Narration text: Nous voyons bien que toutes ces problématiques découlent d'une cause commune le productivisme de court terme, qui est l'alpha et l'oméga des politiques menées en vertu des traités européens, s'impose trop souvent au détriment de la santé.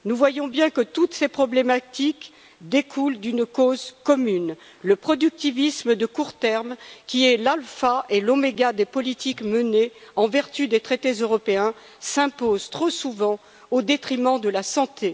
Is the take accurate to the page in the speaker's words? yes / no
yes